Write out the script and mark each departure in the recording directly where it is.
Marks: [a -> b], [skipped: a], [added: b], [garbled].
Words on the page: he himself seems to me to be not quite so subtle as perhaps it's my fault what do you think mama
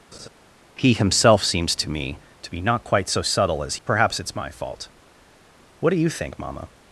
he himself seems to me to be not quite so subtle as perhaps it's my fault what do you think mama